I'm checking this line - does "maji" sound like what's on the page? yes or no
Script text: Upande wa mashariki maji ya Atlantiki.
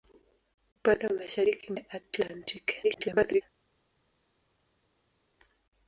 no